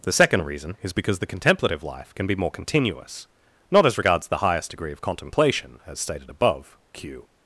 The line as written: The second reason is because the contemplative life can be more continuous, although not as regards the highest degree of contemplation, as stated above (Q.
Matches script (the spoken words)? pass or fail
fail